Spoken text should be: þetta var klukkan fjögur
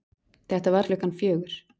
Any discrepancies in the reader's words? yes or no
no